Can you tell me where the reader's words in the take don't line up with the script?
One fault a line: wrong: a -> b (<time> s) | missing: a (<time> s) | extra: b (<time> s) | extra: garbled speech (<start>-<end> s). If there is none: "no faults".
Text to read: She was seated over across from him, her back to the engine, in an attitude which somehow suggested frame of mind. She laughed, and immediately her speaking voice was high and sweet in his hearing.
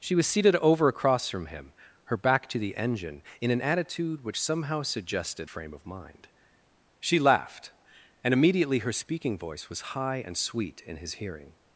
no faults